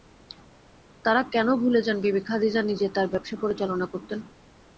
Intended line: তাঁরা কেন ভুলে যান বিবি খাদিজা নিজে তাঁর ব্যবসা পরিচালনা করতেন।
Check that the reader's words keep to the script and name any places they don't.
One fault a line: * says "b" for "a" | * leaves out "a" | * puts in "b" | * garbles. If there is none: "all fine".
all fine